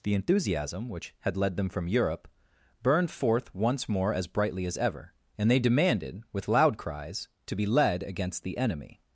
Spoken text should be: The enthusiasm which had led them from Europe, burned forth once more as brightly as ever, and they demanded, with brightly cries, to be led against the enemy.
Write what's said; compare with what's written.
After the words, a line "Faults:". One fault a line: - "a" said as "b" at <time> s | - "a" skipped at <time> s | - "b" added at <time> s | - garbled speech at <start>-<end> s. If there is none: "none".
The enthusiasm which had led them from Europe, burned forth once more as brightly as ever, and they demanded, with loud cries, to be led against the enemy.
Faults:
- "brightly" said as "loud" at 6.5 s